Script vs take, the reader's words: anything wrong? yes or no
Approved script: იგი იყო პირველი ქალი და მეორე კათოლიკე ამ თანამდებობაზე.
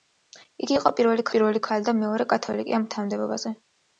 yes